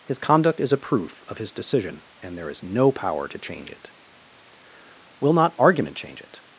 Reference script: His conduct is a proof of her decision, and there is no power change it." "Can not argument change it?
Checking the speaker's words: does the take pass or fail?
fail